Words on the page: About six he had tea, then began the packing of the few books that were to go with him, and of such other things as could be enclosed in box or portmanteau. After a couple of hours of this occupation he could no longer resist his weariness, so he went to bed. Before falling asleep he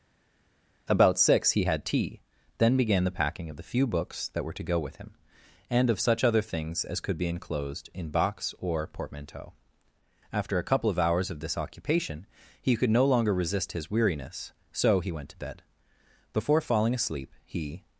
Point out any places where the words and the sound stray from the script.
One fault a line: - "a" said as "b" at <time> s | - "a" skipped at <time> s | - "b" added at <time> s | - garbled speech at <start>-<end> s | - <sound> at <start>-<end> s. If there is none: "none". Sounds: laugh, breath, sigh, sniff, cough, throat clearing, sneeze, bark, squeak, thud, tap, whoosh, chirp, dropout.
none